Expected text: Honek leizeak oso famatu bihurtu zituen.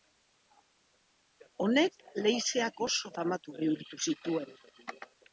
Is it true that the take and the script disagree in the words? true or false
false